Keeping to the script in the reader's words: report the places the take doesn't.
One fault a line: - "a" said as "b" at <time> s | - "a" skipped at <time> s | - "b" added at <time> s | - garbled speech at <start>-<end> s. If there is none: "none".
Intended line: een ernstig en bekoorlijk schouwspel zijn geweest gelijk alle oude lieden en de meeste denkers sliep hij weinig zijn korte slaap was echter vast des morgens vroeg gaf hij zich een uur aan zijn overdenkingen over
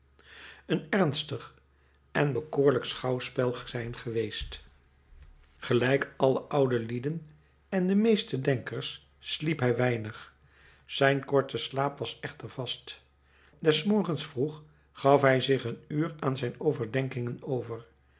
none